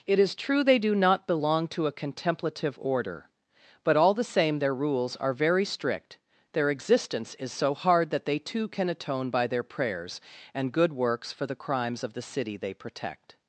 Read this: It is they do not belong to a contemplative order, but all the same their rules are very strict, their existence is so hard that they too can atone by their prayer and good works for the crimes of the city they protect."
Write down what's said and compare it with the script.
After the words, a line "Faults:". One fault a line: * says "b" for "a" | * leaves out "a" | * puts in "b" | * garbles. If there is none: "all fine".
It is true they do not belong to a contemplative order, but all the same their rules are very strict, their existence is so hard that they too can atone by their prayers and good works for the crimes of the city they protect."
Faults:
* puts in "true"
* says "prayers" for "prayer"